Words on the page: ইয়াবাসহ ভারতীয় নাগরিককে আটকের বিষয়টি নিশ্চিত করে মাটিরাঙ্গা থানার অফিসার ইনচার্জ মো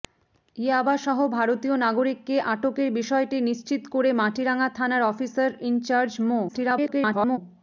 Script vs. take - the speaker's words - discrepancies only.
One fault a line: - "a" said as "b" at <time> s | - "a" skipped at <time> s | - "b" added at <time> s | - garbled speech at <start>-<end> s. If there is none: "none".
- garbled speech at 6.5-7.4 s